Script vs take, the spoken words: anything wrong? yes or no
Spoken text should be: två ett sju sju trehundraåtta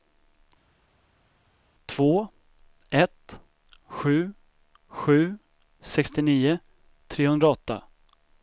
yes